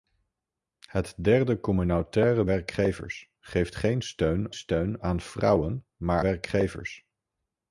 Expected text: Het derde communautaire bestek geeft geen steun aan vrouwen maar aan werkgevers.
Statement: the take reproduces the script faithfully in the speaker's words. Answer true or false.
false